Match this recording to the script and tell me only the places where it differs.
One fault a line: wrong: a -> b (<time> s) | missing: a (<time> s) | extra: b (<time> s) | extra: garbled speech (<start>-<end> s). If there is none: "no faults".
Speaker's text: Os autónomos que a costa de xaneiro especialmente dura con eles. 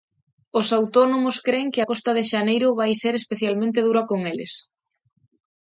extra: cren (1.5 s)
extra: vai ser (2.8 s)